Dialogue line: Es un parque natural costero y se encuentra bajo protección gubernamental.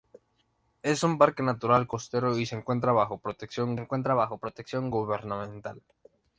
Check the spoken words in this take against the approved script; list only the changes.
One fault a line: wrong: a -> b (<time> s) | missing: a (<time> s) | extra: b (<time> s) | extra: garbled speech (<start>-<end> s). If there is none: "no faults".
extra: encuentra bajo protección (3.8 s)